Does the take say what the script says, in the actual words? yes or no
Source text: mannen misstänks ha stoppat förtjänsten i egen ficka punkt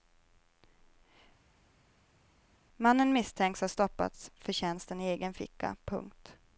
yes